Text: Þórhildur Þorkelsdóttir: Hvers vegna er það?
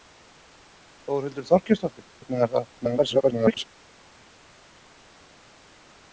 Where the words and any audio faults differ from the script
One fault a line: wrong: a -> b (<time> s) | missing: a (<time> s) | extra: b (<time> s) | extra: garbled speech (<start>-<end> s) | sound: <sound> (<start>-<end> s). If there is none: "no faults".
missing: Hvers (2.1 s)
extra: garbled speech (2.8-3.7 s)